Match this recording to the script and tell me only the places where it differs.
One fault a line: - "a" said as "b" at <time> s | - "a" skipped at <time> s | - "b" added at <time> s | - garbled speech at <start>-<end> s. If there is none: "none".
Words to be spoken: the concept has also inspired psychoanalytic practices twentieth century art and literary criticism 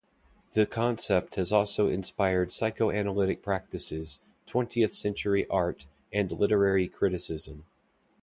none